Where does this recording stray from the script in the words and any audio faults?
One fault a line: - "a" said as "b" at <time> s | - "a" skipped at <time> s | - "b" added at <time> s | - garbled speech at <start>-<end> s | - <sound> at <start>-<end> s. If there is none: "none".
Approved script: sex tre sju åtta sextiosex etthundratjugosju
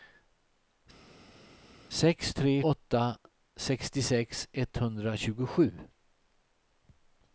- "sju" skipped at 2.5 s